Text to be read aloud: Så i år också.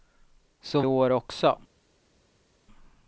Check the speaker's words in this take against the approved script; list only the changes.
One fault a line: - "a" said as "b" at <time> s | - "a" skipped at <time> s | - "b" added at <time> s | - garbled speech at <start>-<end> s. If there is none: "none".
none